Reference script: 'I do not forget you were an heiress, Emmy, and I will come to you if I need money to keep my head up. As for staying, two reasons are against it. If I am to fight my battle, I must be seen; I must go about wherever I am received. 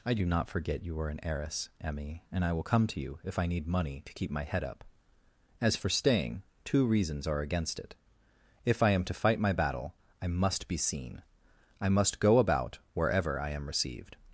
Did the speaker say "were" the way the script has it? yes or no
no